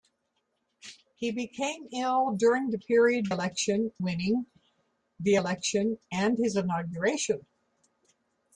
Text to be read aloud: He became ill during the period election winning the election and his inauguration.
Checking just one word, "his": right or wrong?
right